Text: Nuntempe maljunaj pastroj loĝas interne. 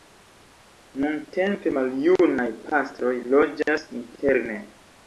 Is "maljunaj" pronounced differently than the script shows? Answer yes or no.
no